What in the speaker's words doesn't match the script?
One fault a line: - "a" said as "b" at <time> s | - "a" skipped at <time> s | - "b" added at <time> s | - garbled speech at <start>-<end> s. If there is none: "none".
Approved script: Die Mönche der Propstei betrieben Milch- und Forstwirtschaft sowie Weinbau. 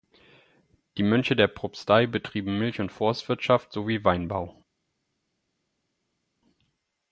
none